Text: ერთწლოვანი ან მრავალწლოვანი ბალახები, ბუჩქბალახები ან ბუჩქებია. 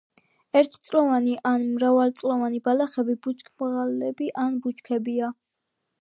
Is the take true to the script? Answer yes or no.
yes